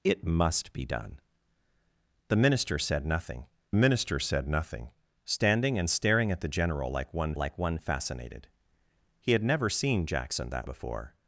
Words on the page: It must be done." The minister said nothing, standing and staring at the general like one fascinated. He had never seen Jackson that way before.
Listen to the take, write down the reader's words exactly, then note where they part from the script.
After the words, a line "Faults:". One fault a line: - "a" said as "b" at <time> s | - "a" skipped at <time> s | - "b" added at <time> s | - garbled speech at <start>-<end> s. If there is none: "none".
It must be done." The minister said nothing minister said nothing, standing and staring at the general like one like one fascinated. He had never seen Jackson that before.
Faults:
- "minister said nothing" added at 3.7 s
- "like one" added at 7.4 s
- "way" skipped at 10.7 s